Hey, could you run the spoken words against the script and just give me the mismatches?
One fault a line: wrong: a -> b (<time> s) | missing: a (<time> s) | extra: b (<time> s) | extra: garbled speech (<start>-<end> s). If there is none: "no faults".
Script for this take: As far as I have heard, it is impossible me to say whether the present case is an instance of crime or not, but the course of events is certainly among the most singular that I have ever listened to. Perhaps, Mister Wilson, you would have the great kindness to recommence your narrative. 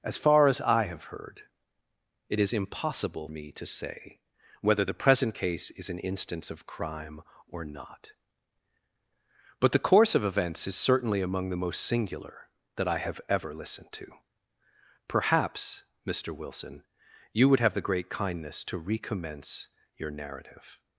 no faults